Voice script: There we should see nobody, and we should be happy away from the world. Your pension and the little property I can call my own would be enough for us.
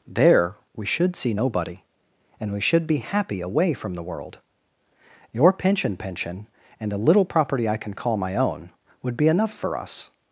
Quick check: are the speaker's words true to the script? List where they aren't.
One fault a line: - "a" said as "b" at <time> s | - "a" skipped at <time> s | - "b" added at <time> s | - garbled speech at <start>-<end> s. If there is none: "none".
- "pension" added at 6.0 s